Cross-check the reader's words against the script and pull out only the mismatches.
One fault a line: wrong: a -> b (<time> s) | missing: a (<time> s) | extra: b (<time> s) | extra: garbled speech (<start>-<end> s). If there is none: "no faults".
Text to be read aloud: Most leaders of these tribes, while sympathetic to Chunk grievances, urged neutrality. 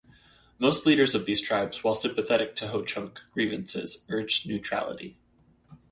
extra: Ho (2.7 s)